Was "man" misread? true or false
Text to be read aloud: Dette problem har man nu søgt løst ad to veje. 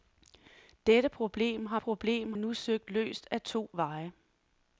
true